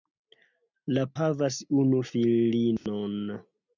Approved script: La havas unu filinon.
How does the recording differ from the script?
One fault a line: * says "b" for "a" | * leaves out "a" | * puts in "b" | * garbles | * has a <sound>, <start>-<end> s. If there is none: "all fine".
* has a dropout, 2.8-2.9 s